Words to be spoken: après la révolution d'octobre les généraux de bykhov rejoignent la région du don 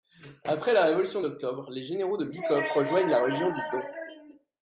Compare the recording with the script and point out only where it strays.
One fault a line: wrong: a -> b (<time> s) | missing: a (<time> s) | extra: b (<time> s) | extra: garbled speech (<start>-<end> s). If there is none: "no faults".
no faults